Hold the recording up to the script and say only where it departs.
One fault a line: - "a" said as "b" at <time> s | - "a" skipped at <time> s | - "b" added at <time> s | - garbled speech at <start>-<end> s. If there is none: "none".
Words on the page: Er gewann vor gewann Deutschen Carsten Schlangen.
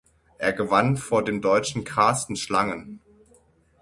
- "gewann" said as "dem" at 1.2 s